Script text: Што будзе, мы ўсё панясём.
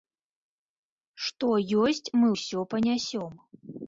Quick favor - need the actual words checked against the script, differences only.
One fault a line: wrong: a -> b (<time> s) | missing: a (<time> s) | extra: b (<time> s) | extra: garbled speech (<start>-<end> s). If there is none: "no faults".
wrong: будзе -> ёсць (1.8 s)